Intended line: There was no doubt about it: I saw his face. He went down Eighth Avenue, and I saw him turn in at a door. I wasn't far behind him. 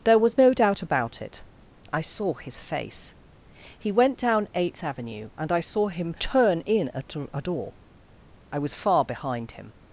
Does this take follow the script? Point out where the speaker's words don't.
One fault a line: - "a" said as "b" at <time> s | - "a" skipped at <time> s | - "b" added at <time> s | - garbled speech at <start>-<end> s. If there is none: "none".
- "wasn't" said as "was" at 8.6 s